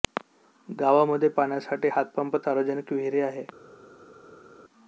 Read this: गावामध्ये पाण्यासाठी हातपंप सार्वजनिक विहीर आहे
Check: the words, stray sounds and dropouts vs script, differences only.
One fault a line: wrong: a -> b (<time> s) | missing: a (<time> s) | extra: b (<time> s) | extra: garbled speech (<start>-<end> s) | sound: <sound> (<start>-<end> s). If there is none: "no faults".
no faults